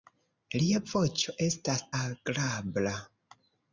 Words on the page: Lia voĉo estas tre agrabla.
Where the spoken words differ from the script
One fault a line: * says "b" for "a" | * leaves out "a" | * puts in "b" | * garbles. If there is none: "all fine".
* leaves out "tre"